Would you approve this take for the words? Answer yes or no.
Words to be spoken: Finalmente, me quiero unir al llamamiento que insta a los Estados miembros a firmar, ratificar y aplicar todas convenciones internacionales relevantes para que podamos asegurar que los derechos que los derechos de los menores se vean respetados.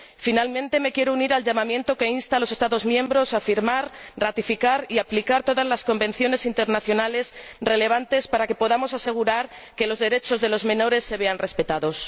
no